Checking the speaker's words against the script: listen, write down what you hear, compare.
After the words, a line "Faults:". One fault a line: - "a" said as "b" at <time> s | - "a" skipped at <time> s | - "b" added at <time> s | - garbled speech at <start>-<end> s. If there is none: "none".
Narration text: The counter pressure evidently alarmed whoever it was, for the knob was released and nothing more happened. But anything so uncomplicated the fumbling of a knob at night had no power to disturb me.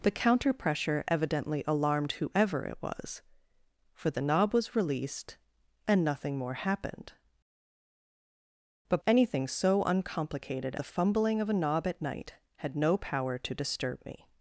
The counter pressure evidently alarmed whoever it was, for the knob was released and nothing more happened. But anything so uncomplicated the fumbling of a knob at night had no power to disturb me.
Faults:
none